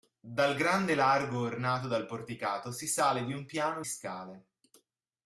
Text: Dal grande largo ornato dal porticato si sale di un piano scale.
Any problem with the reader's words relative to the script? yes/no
no